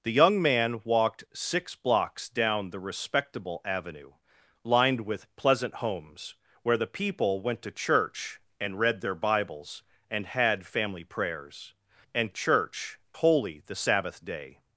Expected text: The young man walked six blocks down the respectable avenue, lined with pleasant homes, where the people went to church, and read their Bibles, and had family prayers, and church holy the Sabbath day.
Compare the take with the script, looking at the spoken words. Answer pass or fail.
pass